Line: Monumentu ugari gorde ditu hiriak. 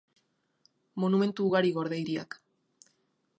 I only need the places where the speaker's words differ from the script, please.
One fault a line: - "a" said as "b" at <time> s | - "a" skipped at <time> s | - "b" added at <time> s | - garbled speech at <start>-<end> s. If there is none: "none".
- "ditu" skipped at 2.0 s